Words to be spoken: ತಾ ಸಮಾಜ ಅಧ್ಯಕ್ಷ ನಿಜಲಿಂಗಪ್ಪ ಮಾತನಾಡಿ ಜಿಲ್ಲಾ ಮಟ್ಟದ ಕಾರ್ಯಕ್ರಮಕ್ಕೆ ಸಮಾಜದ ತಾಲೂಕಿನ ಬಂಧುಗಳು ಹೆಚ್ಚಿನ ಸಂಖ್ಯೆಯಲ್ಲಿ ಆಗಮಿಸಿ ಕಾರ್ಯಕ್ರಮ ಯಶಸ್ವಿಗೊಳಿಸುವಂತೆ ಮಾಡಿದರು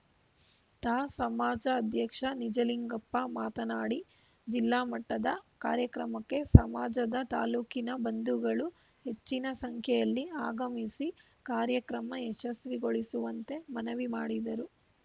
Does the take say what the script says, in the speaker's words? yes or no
no